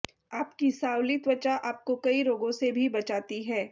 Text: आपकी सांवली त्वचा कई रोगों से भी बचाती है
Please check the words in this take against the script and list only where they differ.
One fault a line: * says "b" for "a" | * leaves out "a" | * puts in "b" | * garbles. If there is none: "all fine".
* puts in "आपको"